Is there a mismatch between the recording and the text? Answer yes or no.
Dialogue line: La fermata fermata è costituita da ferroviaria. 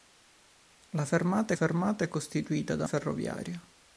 no